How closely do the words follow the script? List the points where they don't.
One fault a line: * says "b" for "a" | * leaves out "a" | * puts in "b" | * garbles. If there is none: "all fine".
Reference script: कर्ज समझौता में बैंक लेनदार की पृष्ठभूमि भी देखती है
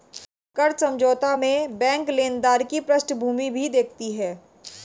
all fine